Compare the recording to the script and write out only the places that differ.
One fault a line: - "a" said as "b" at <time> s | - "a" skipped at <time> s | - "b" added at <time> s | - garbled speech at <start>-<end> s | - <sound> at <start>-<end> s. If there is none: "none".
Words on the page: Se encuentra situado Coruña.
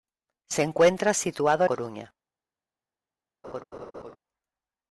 - laugh at 3.4-4.2 s